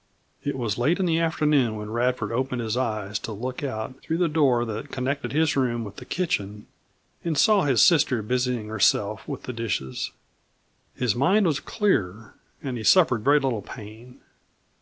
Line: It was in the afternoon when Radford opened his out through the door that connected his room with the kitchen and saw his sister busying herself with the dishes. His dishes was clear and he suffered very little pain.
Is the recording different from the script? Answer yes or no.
yes